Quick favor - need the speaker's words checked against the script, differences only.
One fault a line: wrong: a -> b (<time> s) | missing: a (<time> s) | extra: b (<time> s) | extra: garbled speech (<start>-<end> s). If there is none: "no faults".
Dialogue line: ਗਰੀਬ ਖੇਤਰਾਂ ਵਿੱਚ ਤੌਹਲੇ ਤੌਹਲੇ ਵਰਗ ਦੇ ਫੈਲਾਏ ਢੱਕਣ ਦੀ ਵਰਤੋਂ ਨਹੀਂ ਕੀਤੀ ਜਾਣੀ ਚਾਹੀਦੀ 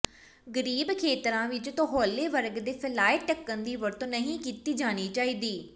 missing: ਤੌਹਲੇ (2.3 s)